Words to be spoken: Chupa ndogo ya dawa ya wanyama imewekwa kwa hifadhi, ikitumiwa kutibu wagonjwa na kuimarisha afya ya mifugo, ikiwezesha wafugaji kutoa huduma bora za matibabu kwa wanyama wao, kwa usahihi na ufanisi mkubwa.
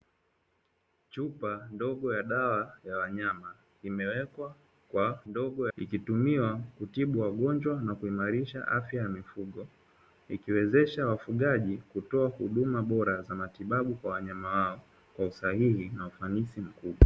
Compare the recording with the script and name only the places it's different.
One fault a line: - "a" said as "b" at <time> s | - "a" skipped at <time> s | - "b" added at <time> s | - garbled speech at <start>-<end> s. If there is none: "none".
- "hifadhi" said as "ndogo" at 5.3 s